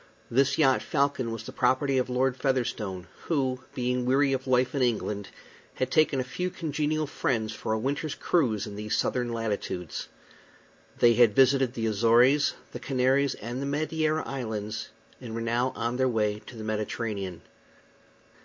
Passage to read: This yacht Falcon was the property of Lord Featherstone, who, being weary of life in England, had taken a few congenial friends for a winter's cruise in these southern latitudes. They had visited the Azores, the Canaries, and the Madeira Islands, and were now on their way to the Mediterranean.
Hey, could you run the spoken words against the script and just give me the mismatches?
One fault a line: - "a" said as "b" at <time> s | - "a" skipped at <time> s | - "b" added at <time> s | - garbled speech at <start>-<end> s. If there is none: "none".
none